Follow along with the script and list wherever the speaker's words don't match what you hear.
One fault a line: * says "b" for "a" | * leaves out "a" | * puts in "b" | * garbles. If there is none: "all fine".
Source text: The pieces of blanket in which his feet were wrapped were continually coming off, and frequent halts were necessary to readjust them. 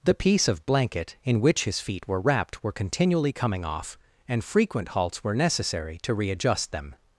* says "piece" for "pieces"